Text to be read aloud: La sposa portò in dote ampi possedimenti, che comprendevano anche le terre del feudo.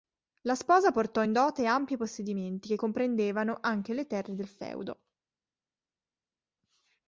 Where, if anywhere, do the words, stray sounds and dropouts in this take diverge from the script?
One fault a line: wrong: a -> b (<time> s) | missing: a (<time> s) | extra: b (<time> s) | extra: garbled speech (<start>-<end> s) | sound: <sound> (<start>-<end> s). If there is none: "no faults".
no faults